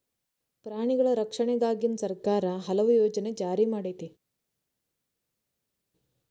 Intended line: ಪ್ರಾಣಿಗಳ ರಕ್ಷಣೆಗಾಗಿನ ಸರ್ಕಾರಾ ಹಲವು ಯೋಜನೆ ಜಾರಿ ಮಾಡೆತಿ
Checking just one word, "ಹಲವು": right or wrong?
right